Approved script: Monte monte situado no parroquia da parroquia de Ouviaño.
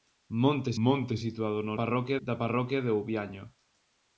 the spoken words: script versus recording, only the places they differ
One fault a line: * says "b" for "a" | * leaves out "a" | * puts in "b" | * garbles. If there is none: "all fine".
all fine